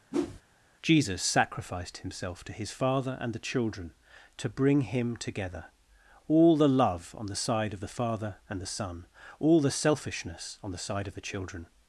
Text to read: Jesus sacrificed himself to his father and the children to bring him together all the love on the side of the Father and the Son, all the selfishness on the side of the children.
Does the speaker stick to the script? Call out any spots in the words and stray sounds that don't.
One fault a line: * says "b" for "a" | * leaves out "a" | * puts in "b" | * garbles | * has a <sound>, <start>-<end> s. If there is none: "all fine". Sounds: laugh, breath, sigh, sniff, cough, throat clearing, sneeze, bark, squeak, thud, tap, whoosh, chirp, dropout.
* has a whoosh, 0.1-0.4 s